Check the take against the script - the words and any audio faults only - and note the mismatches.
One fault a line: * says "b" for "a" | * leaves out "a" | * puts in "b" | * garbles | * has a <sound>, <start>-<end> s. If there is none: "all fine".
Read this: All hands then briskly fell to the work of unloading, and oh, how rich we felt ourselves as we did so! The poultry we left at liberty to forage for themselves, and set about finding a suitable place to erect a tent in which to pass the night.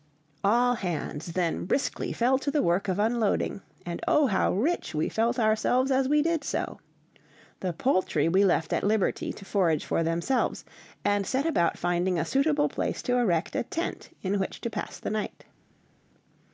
all fine